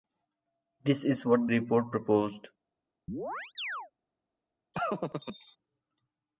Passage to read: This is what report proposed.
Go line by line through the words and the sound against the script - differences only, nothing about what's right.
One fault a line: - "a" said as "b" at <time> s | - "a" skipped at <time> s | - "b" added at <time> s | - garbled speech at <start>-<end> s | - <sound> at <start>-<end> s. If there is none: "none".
- chirp at 3.1-3.9 s
- laugh at 4.7-5.6 s